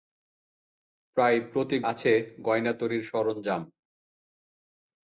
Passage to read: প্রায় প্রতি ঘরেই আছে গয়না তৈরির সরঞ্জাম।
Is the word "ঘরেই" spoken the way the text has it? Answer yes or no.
no